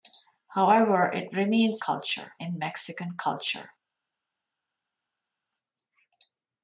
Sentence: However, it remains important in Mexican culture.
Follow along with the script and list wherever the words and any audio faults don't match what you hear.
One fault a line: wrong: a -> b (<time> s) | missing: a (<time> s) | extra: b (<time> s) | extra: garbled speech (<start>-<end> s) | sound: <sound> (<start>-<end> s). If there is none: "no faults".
wrong: important -> culture (1.8 s)